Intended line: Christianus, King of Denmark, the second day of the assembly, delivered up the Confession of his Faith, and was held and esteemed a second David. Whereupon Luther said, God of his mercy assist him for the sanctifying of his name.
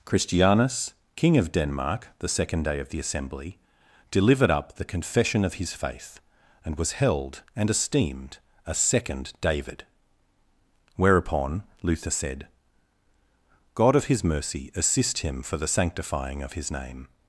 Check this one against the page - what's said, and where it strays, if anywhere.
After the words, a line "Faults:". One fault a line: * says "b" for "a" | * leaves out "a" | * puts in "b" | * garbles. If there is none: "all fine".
Christianus, King of Denmark, the second day of the assembly, delivered up the Confession of his Faith, and was held and esteemed a second David. Whereupon Luther said, God of his mercy assist him for the sanctifying of his name.
Faults:
all fine